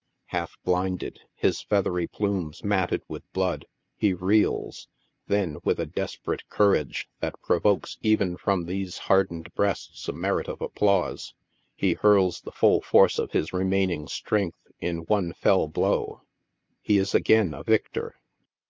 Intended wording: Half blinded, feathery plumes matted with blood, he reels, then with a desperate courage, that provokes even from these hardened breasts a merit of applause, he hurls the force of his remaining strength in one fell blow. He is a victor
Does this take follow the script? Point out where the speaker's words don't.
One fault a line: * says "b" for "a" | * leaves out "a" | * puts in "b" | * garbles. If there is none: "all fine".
* puts in "his"
* puts in "full"
* puts in "again"